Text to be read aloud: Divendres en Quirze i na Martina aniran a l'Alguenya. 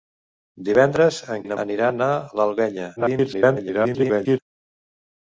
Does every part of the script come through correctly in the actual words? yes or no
no